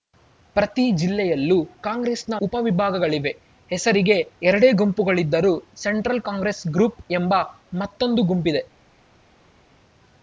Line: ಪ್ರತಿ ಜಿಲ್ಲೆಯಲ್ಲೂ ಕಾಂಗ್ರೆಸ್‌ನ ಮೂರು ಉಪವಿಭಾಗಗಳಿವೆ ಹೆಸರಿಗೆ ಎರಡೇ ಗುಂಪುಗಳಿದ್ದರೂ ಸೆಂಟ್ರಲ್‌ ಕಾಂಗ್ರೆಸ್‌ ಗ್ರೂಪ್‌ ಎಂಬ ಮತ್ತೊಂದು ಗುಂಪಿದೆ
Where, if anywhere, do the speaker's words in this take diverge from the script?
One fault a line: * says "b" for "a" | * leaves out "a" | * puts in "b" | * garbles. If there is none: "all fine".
* leaves out "ಮೂರು"